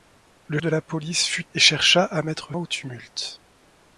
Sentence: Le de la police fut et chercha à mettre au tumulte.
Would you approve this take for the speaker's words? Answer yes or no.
yes